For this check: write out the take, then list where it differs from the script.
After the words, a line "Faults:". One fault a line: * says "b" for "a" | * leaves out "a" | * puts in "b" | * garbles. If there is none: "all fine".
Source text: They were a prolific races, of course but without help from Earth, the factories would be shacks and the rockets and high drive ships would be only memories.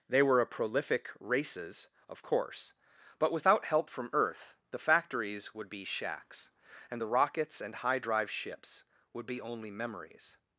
They were a prolific races, of course but without help from Earth, the factories would be shacks and the rockets and high drive ships would be only memories.
Faults:
all fine